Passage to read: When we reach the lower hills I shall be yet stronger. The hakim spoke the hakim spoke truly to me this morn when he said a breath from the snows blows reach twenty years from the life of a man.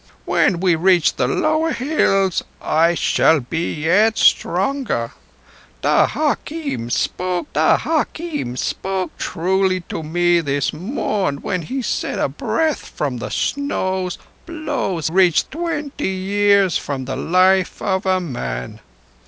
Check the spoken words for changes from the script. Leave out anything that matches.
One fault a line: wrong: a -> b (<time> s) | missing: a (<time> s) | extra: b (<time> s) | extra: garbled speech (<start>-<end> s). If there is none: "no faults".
no faults